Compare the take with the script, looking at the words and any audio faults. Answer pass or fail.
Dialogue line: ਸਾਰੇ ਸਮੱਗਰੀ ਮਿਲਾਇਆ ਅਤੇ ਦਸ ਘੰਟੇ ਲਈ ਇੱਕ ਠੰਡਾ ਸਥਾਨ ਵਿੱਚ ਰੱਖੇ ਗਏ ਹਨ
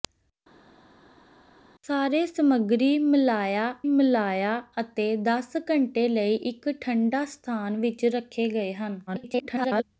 fail